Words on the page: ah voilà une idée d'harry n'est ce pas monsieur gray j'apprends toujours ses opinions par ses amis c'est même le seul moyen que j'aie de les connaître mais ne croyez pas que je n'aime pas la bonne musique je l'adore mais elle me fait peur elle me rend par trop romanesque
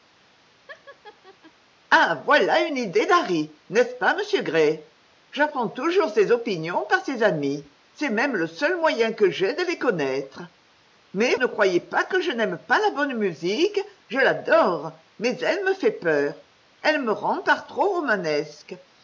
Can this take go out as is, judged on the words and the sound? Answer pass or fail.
fail